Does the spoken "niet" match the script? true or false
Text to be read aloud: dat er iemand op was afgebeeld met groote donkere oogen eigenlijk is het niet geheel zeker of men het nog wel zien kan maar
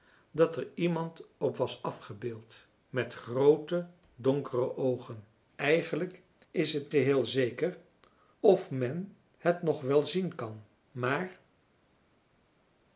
false